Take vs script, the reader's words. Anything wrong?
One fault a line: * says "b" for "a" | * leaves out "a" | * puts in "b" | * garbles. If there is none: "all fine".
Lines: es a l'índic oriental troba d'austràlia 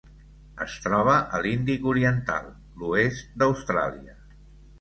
* puts in "troba"
* says "l'oest" for "troba"